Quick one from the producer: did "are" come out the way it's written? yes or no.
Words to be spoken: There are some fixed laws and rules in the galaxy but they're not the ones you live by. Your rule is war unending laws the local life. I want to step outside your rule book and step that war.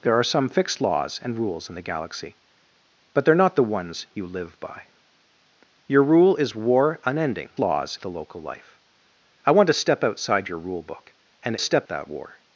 yes